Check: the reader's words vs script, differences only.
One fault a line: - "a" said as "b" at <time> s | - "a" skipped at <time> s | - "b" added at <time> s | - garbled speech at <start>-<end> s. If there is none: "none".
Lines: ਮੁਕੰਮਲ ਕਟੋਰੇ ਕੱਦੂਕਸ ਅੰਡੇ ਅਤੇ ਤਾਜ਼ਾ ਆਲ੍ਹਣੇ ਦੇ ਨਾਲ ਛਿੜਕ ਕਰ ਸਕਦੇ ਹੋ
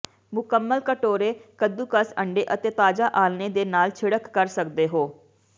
none